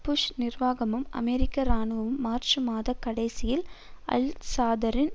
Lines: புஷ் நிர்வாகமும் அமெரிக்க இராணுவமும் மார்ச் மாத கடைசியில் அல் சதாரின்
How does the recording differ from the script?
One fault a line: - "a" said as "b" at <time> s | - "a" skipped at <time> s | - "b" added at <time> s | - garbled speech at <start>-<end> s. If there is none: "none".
none